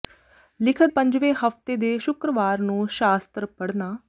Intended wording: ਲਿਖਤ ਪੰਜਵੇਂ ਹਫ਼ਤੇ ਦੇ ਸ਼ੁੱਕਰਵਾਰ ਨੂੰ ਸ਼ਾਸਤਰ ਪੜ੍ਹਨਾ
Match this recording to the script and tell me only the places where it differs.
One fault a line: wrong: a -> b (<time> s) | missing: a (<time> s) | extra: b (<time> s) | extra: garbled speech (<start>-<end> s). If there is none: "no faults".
no faults